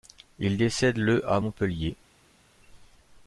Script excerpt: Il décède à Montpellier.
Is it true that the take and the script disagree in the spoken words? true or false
true